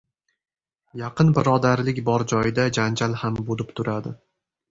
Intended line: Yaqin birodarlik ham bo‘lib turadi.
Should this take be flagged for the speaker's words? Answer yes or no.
yes